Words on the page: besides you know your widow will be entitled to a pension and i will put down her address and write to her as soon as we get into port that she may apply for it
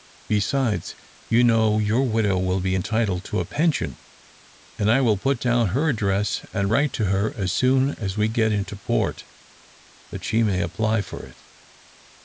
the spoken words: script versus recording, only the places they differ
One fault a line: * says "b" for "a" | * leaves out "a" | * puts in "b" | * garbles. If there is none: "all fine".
all fine